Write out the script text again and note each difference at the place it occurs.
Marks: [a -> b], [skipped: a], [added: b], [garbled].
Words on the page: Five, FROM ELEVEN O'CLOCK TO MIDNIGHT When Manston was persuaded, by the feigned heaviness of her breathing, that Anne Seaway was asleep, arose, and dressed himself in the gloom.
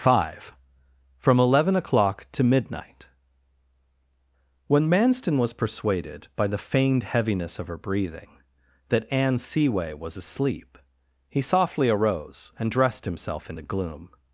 Five, FROM ELEVEN O'CLOCK TO MIDNIGHT When Manston was persuaded, by the feigned heaviness of her breathing, that Anne Seaway was asleep, [added: he softly] arose, and dressed himself in the gloom.